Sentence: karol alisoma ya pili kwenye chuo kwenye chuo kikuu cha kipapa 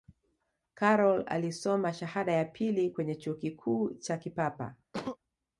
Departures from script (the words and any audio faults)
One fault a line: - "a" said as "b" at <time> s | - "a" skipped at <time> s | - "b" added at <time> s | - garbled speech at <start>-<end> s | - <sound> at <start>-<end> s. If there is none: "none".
- "shahada" added at 1.9 s
- "kwenye chuo" skipped at 3.3 s
- sneeze at 4.9-5.2 s